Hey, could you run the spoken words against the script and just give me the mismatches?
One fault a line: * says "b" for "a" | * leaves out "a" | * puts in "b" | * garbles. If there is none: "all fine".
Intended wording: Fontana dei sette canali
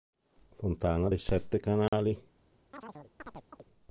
all fine